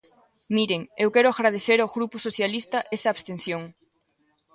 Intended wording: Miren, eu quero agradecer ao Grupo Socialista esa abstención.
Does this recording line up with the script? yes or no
yes